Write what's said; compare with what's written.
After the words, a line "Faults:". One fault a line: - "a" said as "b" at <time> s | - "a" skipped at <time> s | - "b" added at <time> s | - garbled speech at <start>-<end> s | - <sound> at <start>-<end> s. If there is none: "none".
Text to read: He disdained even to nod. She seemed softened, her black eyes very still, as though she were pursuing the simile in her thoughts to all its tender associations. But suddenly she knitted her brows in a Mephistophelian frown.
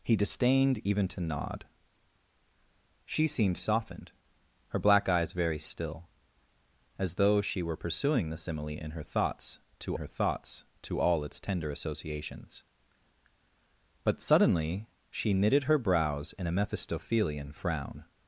He disdained even to nod. She seemed softened, her black eyes very still, as though she were pursuing the simile in her thoughts to her thoughts to all its tender associations. But suddenly she knitted her brows in a Mephistophelian frown.
Faults:
- "her thoughts to" added at 9.9 s